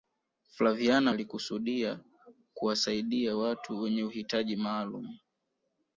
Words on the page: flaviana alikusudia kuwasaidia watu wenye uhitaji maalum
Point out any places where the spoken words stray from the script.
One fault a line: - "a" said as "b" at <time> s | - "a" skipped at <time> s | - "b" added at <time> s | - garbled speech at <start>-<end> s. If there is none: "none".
none